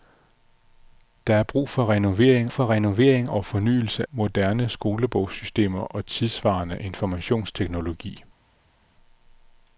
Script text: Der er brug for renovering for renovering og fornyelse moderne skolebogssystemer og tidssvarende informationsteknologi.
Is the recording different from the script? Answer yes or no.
no